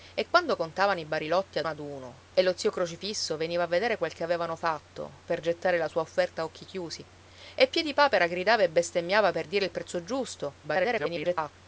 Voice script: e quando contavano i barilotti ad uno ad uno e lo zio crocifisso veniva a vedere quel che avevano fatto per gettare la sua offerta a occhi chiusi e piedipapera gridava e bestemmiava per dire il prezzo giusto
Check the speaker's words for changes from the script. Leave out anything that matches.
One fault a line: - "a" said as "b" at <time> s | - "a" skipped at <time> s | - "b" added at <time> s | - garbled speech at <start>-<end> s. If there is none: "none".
- "uno" skipped at 1.7 s
- garbled speech at 10.6-11.5 s